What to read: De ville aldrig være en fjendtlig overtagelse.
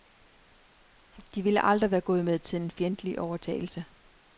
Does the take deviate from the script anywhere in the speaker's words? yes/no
yes